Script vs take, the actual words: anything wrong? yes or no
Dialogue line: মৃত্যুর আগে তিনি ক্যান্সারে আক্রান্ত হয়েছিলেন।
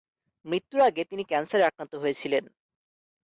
no